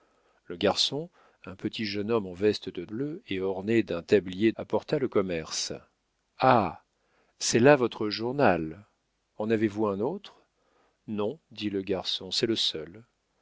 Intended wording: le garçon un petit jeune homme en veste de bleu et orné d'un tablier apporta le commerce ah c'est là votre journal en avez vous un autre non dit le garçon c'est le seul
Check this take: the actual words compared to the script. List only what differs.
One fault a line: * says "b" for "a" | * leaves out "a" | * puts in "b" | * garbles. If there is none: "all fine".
all fine